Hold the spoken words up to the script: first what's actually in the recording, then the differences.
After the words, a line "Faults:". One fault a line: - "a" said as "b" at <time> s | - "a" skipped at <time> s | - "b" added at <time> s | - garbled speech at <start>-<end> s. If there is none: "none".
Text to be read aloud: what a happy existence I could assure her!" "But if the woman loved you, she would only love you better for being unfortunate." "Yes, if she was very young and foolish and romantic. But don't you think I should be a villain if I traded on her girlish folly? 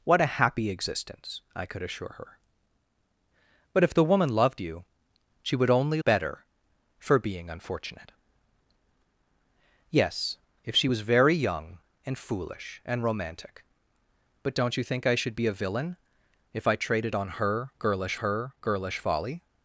what a happy existence I could assure her!" "But if the woman loved you, she would only better for being unfortunate." "Yes, if she was very young and foolish and romantic. But don't you think I should be a villain if I traded on her girlish her girlish folly?
Faults:
- "love you" skipped at 6.0 s
- "her girlish" added at 18.2 s